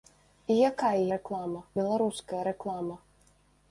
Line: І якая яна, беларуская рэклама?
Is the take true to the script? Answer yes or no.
no